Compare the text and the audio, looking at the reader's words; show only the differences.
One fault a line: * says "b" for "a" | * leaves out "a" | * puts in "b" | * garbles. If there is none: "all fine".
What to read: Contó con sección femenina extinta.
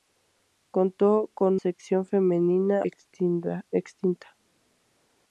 all fine